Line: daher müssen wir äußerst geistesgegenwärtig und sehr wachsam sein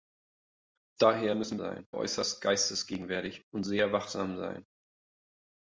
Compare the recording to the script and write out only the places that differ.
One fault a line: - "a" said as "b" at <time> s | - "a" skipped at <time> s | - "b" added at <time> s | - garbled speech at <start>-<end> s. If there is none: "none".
- "wir" said as "sein" at 1.6 s